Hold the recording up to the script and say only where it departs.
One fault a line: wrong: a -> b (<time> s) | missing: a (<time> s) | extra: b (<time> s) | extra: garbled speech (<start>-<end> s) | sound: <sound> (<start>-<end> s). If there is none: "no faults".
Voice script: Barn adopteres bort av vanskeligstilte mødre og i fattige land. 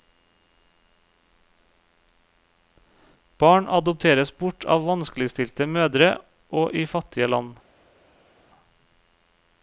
no faults